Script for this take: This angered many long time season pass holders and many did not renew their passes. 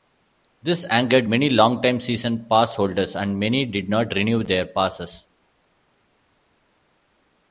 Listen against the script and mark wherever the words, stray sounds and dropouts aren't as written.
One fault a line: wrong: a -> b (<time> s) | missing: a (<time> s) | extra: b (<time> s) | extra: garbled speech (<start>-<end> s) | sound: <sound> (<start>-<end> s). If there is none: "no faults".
no faults